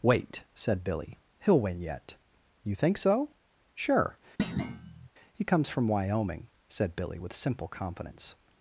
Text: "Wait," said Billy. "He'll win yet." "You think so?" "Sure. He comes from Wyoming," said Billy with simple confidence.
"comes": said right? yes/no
yes